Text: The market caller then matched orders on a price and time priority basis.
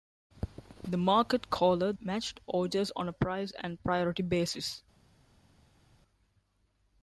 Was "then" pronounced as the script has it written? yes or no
no